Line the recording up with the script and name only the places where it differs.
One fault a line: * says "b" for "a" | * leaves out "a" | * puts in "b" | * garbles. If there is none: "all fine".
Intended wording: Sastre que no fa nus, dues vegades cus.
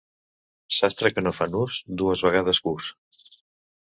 all fine